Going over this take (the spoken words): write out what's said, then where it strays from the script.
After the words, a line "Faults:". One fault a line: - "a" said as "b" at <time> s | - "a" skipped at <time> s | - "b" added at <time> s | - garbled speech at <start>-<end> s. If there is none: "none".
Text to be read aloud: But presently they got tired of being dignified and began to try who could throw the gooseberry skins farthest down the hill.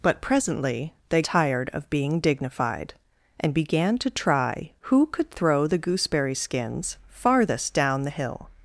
But presently they tired of being dignified and began to try who could throw the gooseberry skins farthest down the hill.
Faults:
- "got" skipped at 1.2 s